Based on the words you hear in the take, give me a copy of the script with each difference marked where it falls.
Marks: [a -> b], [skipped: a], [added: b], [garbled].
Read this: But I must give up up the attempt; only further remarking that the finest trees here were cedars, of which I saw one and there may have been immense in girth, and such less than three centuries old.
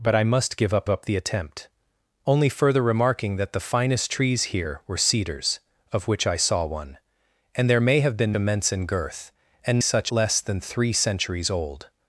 But I must give up up the attempt; only further remarking that the finest trees here were cedars, of which I saw one and there may have been immense in girth, and such less than three centuries old.